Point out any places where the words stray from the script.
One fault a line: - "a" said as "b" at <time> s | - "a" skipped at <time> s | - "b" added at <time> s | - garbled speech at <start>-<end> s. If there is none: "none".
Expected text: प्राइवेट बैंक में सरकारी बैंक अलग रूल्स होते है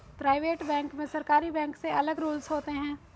- "से" added at 1.8 s